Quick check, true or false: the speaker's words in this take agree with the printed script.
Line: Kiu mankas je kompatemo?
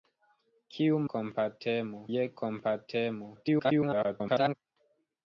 false